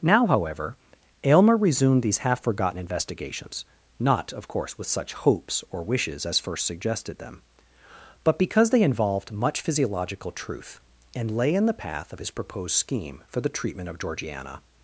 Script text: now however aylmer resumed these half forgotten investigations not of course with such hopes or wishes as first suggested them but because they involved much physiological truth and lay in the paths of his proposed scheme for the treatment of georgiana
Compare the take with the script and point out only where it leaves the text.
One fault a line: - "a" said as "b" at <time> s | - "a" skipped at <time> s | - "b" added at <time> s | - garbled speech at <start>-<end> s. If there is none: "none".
- "paths" said as "path" at 11.8 s